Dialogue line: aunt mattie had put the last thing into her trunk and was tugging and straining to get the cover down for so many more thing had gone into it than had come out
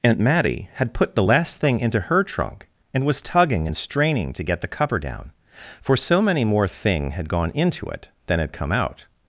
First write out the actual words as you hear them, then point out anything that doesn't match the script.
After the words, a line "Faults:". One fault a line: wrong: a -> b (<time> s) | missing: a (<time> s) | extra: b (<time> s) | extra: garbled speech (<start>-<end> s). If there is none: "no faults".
aunt mattie had put the last thing into her trunk and was tugging and straining to get the cover down for so many more thing had gone into it than had come out
Faults:
no faults